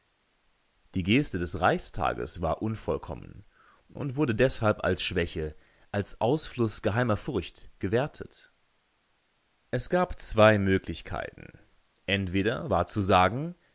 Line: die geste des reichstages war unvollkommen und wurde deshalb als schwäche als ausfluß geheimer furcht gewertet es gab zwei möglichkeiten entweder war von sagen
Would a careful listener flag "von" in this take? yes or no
yes